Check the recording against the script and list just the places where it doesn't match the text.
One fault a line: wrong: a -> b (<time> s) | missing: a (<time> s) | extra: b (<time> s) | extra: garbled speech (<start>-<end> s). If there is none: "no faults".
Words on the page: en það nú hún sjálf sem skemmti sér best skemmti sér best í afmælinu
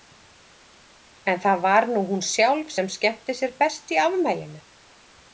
extra: var (1.6 s)
missing: skemmti sér best (3.9 s)